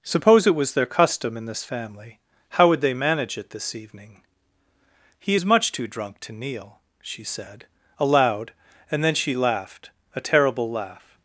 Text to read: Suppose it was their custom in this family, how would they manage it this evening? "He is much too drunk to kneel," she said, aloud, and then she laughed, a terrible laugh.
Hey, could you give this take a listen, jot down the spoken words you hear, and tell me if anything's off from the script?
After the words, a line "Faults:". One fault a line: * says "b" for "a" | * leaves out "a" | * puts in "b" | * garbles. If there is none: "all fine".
Suppose it was their custom in this family, how would they manage it this evening? "He is much too drunk to kneel," she said, aloud, and then she laughed, a terrible laugh.
Faults:
all fine